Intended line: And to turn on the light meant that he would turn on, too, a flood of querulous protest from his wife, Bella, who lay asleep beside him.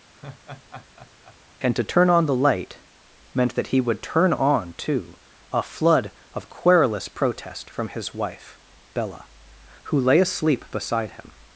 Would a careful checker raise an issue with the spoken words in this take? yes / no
no